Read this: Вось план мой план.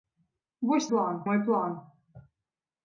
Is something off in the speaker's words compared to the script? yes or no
no